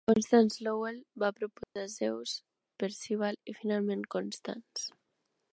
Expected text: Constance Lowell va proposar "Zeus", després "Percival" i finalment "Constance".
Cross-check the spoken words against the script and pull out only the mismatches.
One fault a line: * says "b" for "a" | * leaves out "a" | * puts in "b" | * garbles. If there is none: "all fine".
* leaves out "després"